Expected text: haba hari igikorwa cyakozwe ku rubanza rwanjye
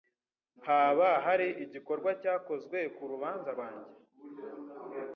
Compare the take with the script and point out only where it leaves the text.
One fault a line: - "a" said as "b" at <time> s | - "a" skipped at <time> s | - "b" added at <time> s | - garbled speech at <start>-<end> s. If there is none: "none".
none